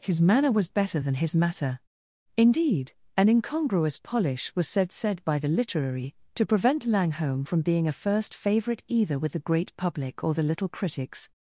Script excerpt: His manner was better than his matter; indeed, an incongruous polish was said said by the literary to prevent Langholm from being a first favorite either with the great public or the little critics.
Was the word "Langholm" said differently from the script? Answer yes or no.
no